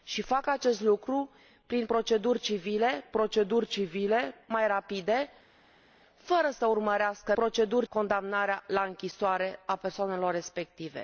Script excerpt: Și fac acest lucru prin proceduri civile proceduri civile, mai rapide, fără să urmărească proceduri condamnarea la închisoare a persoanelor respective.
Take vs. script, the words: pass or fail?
pass